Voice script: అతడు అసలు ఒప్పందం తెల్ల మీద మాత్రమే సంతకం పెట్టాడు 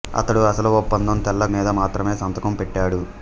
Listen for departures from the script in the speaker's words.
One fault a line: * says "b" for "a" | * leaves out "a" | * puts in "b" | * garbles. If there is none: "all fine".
all fine